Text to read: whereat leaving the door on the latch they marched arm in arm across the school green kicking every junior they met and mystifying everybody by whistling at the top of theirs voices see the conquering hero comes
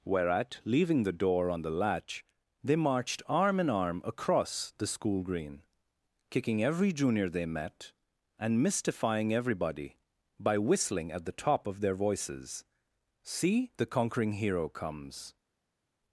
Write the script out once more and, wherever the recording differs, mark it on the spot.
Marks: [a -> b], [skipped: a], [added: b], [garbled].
whereat leaving the door on the latch they marched arm in arm across the school green kicking every junior they met and mystifying everybody by whistling at the top of [theirs -> their] voices see the conquering hero comes